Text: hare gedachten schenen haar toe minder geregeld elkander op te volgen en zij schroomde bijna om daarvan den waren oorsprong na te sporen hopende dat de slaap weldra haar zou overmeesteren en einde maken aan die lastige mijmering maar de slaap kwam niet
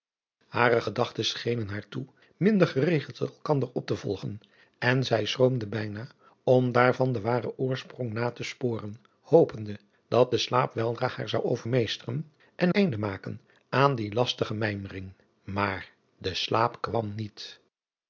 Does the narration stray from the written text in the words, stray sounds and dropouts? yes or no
no